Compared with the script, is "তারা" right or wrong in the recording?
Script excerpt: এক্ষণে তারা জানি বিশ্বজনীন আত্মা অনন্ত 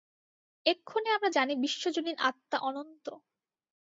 wrong